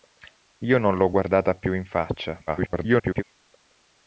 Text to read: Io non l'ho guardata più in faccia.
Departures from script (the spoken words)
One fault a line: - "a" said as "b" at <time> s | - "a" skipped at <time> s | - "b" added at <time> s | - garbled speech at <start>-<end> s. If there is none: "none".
- garbled speech at 2.5-3.2 s